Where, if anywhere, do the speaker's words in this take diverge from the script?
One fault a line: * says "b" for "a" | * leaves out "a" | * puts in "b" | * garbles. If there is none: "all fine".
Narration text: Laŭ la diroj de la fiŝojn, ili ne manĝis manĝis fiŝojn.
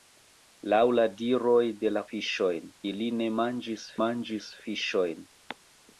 all fine